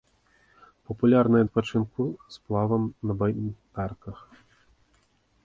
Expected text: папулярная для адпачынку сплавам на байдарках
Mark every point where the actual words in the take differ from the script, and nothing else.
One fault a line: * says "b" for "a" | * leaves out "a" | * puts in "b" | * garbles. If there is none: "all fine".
* leaves out "для"